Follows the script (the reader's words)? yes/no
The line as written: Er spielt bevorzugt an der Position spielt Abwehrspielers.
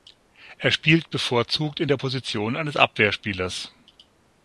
no